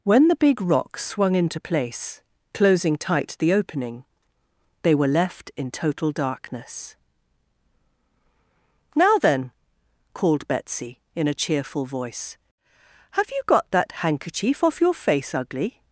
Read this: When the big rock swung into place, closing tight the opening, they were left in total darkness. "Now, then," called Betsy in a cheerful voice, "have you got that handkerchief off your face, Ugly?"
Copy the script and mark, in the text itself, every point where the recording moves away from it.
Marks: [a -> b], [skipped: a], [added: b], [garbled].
When the big rock swung into place, closing tight the opening, they were left in total darkness. "Now, then," called Betsy in a cheerful voice, "have you got that handkerchief off your face, Ugly?"